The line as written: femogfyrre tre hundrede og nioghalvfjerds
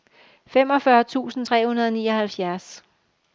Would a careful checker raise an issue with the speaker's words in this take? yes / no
yes